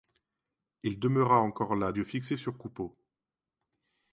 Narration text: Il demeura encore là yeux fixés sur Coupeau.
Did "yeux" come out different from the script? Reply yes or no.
no